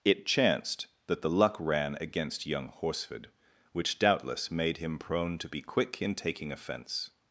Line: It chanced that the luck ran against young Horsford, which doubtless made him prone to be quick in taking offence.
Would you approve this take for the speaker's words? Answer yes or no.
yes